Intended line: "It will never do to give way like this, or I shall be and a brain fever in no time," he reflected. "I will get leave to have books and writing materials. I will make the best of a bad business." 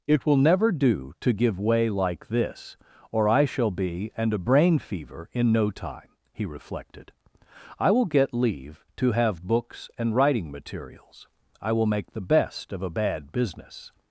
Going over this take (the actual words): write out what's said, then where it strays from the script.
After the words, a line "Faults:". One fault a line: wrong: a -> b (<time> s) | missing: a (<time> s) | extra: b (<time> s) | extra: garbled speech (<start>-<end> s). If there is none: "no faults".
"It will never do to give way like this, or I shall be and a brain fever in no time," he reflected. "I will get leave to have books and writing materials. I will make the best of a bad business."
Faults:
no faults